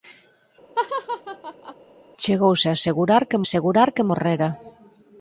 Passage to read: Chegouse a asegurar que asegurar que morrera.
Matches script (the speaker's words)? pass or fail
pass